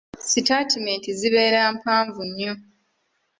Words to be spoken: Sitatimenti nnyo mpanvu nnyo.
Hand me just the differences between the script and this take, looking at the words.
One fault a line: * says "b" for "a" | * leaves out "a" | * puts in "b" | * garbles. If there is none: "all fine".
* says "zibeera" for "nnyo"